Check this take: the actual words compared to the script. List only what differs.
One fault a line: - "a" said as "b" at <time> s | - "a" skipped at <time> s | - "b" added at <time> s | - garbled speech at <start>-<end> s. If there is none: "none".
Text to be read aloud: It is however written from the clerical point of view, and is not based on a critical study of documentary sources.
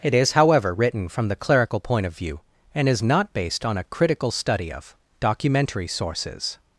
none